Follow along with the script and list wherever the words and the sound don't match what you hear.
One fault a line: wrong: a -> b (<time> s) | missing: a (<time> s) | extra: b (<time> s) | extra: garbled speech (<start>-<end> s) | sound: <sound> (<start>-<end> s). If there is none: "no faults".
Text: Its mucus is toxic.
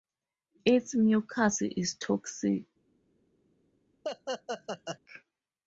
sound: laugh (4.0-5.0 s)